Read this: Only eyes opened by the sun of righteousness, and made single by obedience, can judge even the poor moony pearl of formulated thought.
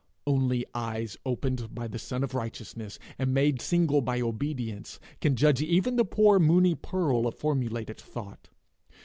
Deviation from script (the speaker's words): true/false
false